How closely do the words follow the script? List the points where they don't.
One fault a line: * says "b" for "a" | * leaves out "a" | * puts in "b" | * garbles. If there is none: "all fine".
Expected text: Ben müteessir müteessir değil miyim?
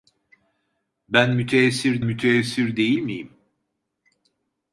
all fine